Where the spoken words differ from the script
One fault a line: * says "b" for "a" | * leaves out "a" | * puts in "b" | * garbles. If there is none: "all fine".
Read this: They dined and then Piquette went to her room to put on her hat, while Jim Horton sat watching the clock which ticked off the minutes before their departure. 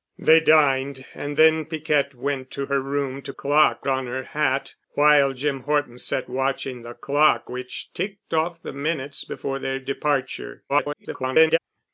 * says "clock" for "put"
* garbles